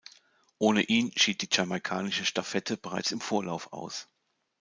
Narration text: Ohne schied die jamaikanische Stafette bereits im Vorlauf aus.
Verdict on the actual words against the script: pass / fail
fail